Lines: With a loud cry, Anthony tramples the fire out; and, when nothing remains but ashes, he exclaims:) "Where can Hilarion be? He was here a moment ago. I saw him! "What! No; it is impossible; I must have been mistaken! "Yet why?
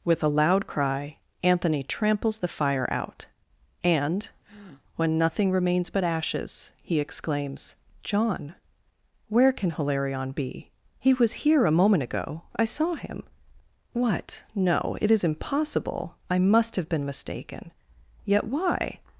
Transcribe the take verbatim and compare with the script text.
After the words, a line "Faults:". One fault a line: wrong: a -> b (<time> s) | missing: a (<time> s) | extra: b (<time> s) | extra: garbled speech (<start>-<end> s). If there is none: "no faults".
With a loud cry, Anthony tramples the fire out; and, when nothing remains but ashes, he exclaims:) john "Where can Hilarion be? He was here a moment ago. I saw him! "What! No; it is impossible; I must have been mistaken! "Yet why?
Faults:
extra: john (8.0 s)